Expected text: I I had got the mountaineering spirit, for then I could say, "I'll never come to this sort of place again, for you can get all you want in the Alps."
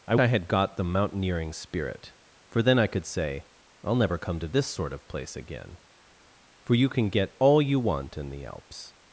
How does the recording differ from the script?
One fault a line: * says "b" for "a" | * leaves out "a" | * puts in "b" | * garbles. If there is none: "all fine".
all fine